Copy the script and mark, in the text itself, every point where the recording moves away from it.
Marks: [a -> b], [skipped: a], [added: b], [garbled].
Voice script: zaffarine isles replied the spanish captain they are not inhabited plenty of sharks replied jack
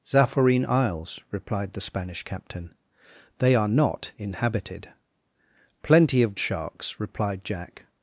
zaffarine isles replied the spanish captain they are not inhabited plenty of sharks replied jack